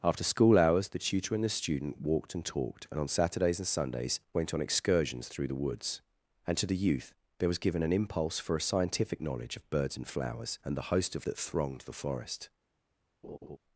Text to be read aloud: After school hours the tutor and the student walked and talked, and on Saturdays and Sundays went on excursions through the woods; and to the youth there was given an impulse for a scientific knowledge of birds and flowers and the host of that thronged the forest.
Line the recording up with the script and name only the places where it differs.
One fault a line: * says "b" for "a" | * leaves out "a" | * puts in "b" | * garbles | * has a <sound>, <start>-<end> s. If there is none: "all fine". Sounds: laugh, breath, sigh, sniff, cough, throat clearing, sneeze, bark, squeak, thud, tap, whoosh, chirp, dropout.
* has a laugh, 13.2-13.6 s